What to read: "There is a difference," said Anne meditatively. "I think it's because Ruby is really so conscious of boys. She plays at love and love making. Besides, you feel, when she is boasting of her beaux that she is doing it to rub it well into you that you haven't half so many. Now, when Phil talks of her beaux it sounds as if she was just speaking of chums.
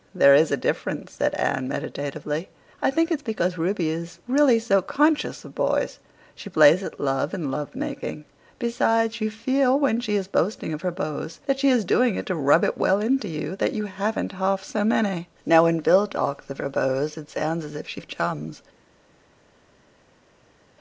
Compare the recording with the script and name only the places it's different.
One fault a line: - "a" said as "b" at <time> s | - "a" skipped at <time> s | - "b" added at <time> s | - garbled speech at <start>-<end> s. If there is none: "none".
- "was just speaking" skipped at 18.0 s